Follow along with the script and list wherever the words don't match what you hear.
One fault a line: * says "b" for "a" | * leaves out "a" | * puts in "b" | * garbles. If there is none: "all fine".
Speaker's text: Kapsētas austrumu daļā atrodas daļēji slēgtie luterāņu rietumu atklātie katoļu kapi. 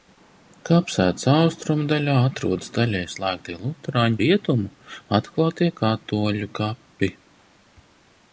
all fine